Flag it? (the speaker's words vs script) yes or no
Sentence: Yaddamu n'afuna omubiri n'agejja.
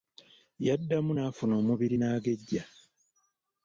no